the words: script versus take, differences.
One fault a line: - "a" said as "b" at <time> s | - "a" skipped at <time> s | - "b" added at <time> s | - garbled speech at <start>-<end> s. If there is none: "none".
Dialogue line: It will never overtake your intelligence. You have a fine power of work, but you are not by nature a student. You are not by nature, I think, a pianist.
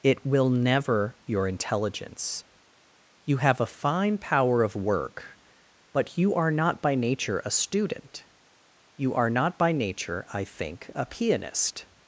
- "overtake" skipped at 1.1 s